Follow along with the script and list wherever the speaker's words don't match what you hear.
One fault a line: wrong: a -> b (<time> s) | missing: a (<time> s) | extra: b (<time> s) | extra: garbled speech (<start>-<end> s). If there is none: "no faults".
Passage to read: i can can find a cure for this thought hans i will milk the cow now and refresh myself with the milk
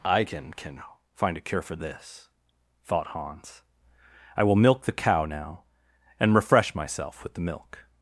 no faults